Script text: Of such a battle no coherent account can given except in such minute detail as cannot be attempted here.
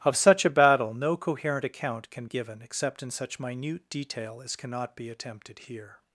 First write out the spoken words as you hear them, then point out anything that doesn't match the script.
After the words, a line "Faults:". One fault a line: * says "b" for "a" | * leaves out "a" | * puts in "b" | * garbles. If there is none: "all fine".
Of such a battle no coherent account can given except in such minute detail as cannot be attempted here.
Faults:
all fine